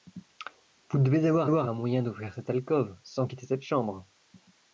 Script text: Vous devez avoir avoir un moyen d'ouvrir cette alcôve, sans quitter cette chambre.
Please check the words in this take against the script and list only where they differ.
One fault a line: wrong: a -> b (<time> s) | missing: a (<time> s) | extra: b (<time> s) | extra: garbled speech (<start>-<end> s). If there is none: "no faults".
no faults